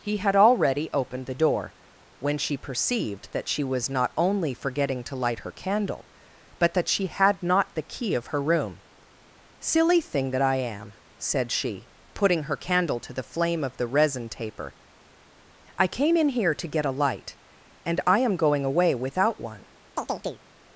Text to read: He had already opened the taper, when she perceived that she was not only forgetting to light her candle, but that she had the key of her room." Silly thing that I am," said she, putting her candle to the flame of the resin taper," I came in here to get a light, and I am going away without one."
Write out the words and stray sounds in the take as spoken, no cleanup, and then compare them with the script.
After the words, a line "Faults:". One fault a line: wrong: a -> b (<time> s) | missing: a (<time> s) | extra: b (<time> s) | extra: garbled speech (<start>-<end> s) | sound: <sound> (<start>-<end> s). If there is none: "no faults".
He had already opened the door, when she perceived that she was not only forgetting to light her candle, but that she had not the key of her room." Silly thing that I am," said she, putting her candle to the flame of the resin taper," I came in here to get a light, and I am going away without one."
Faults:
wrong: taper -> door (1.4 s)
extra: not (7.4 s)
sound: chirp (20.0-20.4 s)